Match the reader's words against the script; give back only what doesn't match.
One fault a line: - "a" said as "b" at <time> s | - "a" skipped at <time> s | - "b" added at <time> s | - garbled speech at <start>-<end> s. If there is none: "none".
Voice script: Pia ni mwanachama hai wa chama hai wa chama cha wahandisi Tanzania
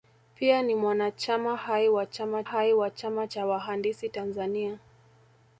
none